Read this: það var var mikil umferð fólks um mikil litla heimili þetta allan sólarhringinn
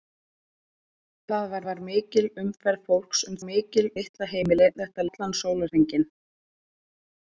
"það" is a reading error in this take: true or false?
false